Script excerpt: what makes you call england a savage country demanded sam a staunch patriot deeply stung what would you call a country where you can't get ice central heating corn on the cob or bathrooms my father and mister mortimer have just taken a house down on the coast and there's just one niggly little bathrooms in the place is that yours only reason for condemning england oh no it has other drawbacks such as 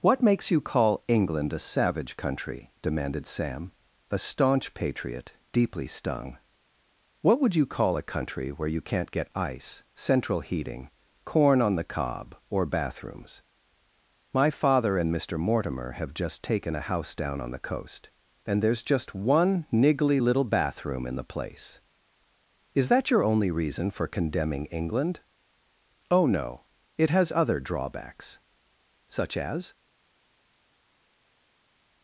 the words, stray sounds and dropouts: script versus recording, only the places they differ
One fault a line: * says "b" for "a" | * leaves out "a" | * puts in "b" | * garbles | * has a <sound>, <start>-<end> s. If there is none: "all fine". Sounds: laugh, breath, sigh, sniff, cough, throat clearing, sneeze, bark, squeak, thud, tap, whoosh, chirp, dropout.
* says "bathroom" for "bathrooms"
* says "your" for "yours"